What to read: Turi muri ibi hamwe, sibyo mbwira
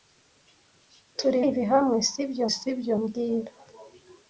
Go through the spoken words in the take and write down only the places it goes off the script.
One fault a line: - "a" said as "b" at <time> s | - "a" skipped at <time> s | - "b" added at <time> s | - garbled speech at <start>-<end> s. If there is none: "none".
- "muri" skipped at 1.4 s
- "sibyo" added at 2.6 s